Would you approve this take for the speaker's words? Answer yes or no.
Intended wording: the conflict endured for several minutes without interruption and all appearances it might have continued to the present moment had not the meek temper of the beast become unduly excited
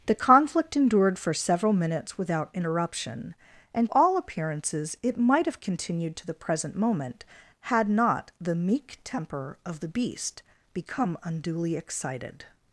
yes